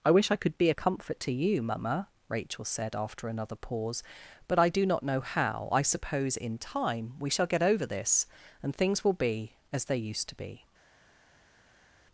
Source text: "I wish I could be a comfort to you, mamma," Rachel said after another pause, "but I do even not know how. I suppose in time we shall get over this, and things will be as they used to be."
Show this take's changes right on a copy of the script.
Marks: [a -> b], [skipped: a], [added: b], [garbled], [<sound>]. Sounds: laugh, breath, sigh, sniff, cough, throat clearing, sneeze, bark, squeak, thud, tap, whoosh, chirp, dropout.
"I wish I could be a comfort to you, mamma," Rachel said after another pause, "but I do [skipped: even] not know how. I suppose in time we shall get over this, and things will be as they used to be."